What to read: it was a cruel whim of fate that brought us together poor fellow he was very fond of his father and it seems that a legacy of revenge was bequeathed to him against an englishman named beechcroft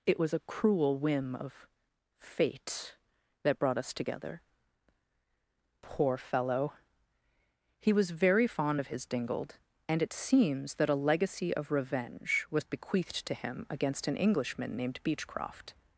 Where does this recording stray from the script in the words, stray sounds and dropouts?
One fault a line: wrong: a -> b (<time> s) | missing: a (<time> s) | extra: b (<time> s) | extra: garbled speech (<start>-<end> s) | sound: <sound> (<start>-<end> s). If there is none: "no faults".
wrong: father -> dingled (9.0 s)